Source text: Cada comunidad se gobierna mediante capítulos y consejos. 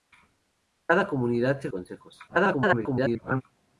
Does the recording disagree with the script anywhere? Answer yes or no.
yes